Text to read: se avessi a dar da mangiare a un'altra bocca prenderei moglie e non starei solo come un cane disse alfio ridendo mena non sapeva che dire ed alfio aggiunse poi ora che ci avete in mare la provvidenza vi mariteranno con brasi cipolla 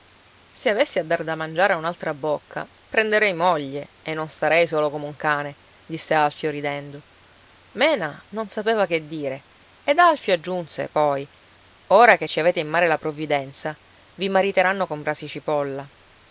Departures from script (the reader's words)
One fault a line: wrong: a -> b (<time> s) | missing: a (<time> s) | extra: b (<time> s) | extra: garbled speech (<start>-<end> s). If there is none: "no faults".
no faults